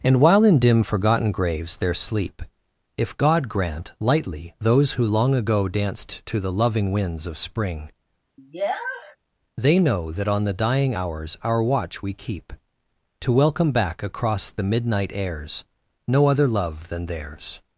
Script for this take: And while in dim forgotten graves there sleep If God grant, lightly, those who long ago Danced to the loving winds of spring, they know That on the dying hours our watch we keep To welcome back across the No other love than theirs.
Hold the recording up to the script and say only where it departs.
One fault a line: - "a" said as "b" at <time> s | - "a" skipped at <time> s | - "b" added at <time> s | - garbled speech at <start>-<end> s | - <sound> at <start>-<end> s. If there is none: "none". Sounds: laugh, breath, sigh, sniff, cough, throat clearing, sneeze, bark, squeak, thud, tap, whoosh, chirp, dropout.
- sniff at 8.4-9.2 s
- "midnight airs" added at 14.6 s